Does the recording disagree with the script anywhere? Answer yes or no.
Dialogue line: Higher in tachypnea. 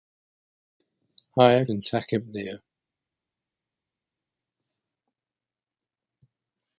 no